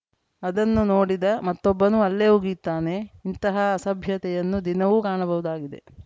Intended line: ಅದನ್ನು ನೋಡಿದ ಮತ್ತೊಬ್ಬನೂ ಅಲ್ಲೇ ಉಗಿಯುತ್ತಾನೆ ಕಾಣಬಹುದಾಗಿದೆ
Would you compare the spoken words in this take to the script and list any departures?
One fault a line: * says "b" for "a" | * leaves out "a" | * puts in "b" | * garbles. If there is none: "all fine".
* puts in "ಇಂತಹ ಅಸಭ್ಯತೆಯನ್ನು ದಿನವೂ"